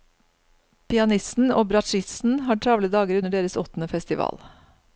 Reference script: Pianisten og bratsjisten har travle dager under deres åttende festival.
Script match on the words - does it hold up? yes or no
yes